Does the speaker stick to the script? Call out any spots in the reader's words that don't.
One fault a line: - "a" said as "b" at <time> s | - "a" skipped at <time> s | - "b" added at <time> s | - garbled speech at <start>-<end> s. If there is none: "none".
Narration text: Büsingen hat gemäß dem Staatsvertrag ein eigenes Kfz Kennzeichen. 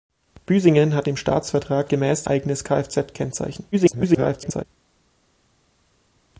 - "gemäß" skipped at 1.1 s
- "ein" said as "gemäß" at 1.9 s
- garbled speech at 3.7-4.6 s